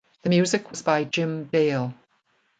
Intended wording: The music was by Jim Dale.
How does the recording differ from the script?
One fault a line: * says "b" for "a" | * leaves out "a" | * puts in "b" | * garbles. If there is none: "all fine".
all fine